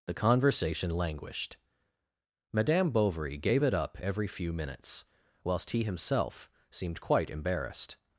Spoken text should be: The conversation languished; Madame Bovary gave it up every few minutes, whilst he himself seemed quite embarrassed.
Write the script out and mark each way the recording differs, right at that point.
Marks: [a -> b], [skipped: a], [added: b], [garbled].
The conversation languished; Madame Bovary gave it up every few minutes, whilst he himself seemed quite embarrassed.